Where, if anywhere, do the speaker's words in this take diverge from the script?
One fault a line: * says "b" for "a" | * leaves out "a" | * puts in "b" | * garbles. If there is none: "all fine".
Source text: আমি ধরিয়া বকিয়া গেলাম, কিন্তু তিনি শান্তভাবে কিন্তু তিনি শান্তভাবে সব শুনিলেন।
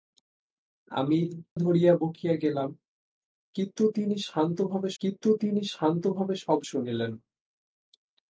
all fine